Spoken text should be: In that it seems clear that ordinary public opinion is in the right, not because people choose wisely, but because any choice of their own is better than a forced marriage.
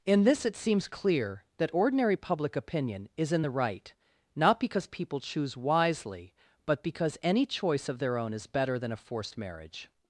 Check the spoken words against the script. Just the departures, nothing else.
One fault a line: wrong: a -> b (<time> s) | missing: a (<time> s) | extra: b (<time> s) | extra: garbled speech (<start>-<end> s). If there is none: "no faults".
wrong: that -> this (0.2 s)